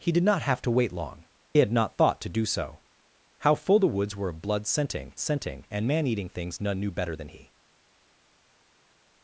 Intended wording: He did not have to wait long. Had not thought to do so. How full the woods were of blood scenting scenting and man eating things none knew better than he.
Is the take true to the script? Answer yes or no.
yes